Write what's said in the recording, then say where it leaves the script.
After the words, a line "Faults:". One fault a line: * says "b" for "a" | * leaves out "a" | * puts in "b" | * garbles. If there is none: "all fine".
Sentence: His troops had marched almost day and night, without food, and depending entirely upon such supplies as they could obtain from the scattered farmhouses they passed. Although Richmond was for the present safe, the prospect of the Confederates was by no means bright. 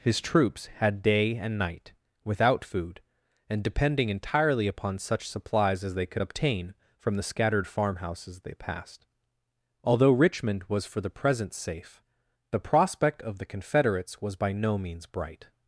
His troops had day and night, without food, and depending entirely upon such supplies as they could obtain from the scattered farmhouses they passed. Although Richmond was for the present safe, the prospect of the Confederates was by no means bright.
Faults:
* leaves out "marched almost"